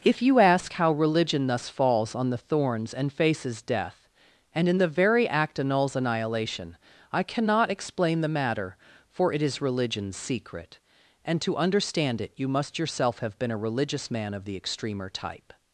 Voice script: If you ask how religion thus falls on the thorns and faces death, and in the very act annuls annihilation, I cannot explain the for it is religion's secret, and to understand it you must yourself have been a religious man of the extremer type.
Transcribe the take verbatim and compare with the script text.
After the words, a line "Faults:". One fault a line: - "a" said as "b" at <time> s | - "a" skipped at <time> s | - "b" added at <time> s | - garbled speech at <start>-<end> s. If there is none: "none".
If you ask how religion thus falls on the thorns and faces death, and in the very act annuls annihilation, I cannot explain the matter, for it is religion's secret, and to understand it you must yourself have been a religious man of the extremer type.
Faults:
- "matter" added at 8.3 s